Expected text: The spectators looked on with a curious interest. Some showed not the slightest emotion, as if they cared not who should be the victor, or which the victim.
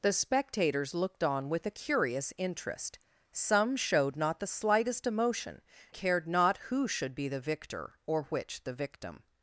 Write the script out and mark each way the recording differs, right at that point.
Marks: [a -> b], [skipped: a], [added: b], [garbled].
The spectators looked on with a curious interest. Some showed not the slightest emotion, [skipped: as if they] cared not who should be the victor, or which the victim.